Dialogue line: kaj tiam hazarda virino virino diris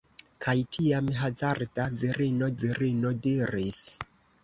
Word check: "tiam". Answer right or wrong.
right